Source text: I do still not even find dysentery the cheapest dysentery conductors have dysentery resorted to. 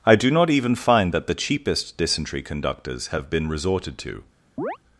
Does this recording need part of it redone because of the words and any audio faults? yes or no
yes